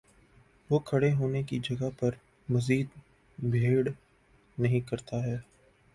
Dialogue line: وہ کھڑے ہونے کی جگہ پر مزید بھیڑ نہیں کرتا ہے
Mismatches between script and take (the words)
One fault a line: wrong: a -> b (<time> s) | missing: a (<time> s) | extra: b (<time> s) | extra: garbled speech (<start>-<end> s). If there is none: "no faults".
no faults